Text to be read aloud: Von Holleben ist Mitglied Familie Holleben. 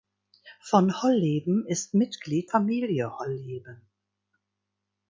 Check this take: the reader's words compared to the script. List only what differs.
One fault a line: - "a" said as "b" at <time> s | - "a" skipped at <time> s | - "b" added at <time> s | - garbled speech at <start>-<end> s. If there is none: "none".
none